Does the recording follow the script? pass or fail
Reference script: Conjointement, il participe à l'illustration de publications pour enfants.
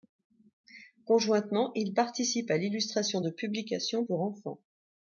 pass